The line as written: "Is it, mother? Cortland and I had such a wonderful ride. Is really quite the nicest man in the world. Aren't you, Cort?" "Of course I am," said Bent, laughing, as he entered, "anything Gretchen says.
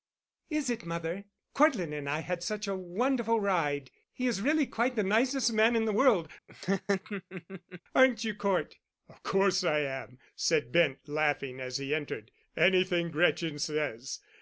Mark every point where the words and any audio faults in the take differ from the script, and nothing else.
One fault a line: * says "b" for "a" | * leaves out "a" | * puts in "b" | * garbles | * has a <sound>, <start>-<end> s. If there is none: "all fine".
* puts in "He"
* has a laugh, 6.5-7.8 s